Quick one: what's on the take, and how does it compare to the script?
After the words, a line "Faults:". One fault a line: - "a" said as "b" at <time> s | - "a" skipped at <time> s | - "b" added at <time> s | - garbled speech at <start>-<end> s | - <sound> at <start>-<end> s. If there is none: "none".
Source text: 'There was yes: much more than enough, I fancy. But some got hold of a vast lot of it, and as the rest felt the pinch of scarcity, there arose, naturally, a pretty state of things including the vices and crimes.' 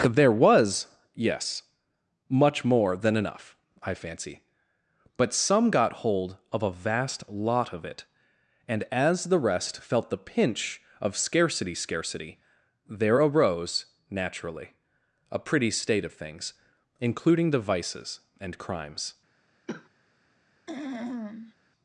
'There was yes: much more than enough, I fancy. But some got hold of a vast lot of it, and as the rest felt the pinch of scarcity scarcity, there arose, naturally, a pretty state of things including the vices and crimes.'
Faults:
- "scarcity" added at 11.7 s
- cough at 19.7-19.9 s
- throat clearing at 20.7-21.5 s